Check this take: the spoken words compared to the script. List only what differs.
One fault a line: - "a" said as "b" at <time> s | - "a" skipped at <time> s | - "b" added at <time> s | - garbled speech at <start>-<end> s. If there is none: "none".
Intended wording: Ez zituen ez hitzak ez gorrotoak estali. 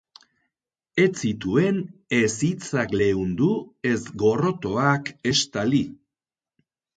- "leundu" added at 3.0 s